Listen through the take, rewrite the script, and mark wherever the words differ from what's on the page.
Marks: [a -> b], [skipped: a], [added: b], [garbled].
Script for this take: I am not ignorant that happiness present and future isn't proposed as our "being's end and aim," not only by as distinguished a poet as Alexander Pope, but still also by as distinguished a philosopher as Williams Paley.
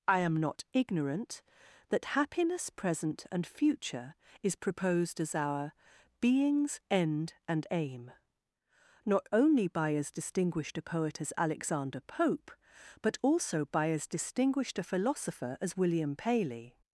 I am not ignorant that happiness present and future [isn't -> is] proposed as our "being's end and aim," not only by as distinguished a poet as Alexander Pope, but [skipped: still] also by as distinguished a philosopher as [Williams -> William] Paley.